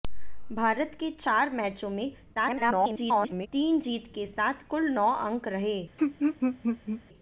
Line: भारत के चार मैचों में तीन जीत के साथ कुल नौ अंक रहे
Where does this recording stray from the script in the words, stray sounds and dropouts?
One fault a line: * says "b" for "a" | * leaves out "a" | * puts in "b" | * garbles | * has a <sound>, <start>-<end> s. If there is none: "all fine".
* garbles
* has a laugh, 6.0-7.0 s